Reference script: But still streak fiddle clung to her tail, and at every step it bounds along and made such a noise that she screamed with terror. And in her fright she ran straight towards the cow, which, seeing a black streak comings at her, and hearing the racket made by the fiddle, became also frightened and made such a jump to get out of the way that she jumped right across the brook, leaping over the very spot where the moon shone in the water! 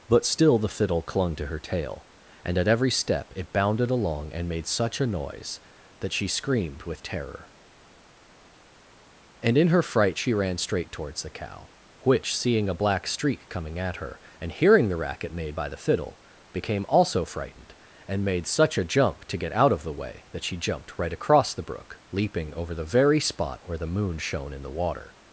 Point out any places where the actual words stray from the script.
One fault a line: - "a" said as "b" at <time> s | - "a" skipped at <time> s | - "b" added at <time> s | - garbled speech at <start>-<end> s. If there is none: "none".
- "streak" said as "the" at 0.6 s
- "bounds" said as "bounded" at 3.5 s
- "comings" said as "coming" at 13.5 s